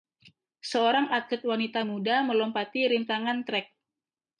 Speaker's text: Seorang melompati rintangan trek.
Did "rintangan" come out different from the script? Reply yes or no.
no